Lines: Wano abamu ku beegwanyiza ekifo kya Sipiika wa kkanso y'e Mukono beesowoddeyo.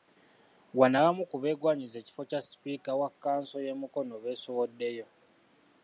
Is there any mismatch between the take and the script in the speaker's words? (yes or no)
no